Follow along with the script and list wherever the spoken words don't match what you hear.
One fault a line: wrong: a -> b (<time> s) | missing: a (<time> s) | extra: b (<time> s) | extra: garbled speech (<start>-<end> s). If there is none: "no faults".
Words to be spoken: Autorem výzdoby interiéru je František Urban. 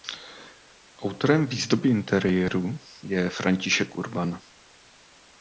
no faults